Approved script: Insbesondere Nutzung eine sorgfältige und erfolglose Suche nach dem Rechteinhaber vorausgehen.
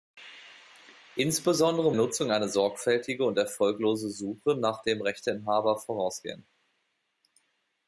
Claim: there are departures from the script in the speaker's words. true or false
false